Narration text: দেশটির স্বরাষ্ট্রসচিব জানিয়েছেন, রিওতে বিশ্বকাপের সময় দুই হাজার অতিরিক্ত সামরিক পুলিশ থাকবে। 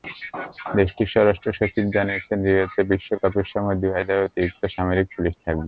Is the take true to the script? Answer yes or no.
yes